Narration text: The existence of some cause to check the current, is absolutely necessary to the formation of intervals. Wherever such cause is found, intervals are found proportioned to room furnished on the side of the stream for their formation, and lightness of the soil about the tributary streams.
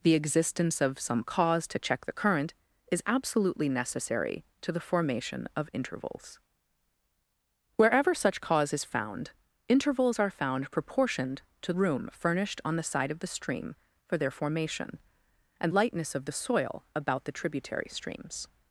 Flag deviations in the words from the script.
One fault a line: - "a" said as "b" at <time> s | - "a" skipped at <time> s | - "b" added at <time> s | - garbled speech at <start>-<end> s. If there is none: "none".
none